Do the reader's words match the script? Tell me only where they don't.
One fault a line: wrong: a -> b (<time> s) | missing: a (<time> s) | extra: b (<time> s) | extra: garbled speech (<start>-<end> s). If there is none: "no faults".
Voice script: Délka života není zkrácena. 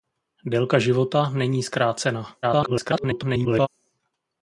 extra: garbled speech (2.4-3.7 s)